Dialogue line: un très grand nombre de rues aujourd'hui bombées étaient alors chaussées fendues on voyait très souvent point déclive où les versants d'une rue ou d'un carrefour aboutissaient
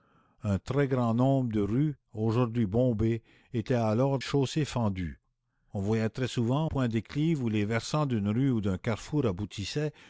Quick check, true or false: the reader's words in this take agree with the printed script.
true